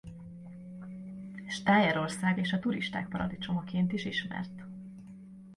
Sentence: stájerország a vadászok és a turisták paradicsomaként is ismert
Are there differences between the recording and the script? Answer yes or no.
yes